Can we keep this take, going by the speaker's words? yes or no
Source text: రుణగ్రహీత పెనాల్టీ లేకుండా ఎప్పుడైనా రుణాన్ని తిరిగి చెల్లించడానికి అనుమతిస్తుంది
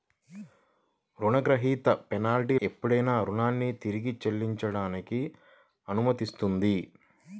no